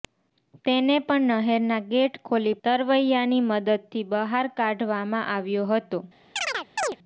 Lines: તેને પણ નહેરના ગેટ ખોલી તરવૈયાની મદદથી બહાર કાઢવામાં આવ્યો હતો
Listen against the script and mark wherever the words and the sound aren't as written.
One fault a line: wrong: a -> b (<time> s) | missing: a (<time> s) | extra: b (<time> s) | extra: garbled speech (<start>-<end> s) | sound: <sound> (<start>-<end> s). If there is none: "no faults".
sound: chirp (6.4-7.0 s)